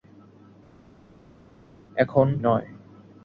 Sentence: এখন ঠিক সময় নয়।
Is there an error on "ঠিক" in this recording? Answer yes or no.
yes